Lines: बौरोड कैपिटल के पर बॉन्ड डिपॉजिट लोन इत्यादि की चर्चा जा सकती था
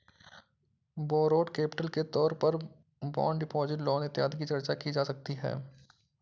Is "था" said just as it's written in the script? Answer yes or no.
no